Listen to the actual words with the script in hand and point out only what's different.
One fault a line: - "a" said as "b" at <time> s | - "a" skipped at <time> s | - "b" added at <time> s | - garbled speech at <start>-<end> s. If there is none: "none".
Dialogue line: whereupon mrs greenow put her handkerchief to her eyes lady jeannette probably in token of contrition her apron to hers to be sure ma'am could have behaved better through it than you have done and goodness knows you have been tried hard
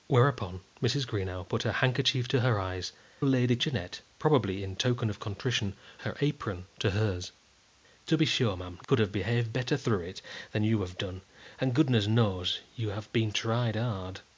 none